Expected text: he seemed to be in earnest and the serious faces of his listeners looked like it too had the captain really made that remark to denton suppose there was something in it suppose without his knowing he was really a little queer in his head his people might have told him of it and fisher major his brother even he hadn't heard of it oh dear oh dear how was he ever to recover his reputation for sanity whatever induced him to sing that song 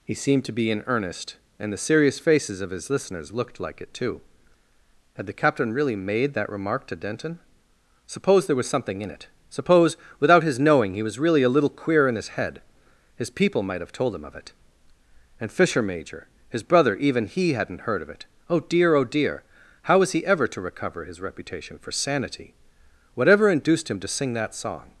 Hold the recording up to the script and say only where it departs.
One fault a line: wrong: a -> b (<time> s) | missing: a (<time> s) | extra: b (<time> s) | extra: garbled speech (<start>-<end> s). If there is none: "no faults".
no faults